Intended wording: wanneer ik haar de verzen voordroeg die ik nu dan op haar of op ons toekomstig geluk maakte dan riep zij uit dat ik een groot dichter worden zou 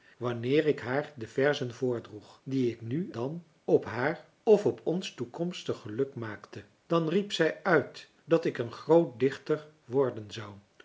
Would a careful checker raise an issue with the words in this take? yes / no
no